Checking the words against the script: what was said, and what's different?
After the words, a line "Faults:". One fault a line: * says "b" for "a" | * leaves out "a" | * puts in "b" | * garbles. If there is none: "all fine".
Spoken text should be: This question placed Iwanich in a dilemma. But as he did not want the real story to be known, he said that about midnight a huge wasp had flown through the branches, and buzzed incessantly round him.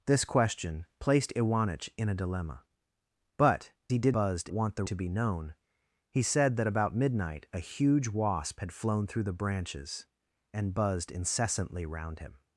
This question placed Iwanich in a dilemma. But he did buzzed want the to be known, he said that about midnight a huge wasp had flown through the branches, and buzzed incessantly round him.
Faults:
* leaves out "as"
* says "buzzed" for "not"
* leaves out "real story"